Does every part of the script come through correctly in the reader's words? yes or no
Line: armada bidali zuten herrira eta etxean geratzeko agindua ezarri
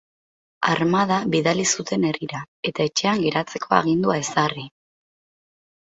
yes